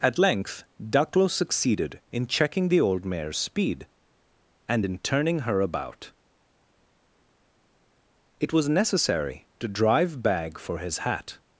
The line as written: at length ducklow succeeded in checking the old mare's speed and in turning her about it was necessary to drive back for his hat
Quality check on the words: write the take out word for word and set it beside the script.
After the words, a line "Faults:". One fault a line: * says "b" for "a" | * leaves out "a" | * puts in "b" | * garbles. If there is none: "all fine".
at length ducklow succeeded in checking the old mare's speed and in turning her about it was necessary to drive bag for his hat
Faults:
* says "bag" for "back"